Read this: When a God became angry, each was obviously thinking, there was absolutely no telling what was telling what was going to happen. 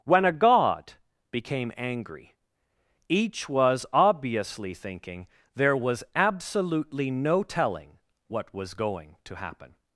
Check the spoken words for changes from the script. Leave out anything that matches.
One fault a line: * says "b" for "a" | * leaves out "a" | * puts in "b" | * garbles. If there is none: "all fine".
* leaves out "telling what was"